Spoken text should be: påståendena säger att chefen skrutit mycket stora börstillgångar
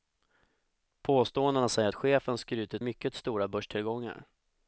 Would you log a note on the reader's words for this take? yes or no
no